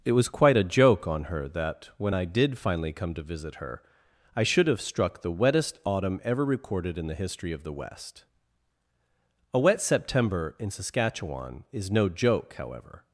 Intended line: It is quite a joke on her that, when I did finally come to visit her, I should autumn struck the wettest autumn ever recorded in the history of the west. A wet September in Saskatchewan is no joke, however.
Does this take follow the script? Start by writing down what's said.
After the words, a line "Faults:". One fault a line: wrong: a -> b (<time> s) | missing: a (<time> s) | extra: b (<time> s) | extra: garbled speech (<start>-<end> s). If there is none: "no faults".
It was quite a joke on her that, when I did finally come to visit her, I should have struck the wettest autumn ever recorded in the history of the west. A wet September in Saskatchewan is no joke, however.
Faults:
wrong: is -> was (0.1 s)
wrong: autumn -> have (4.7 s)